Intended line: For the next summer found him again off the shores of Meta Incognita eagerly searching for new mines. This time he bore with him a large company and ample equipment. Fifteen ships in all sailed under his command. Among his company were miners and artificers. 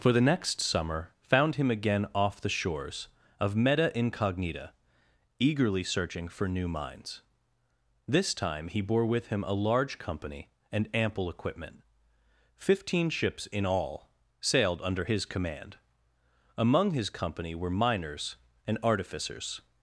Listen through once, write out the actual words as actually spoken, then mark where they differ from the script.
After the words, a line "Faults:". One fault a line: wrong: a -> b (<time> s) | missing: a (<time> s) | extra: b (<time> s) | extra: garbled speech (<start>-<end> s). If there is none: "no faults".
For the next summer found him again off the shores of Meta Incognita eagerly searching for new mines. This time he bore with him a large company and ample equipment. Fifteen ships in all sailed under his command. Among his company were miners and artificers.
Faults:
no faults